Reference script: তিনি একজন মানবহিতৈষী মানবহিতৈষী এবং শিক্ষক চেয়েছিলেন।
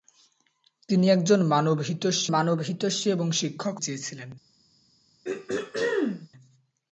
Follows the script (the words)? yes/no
yes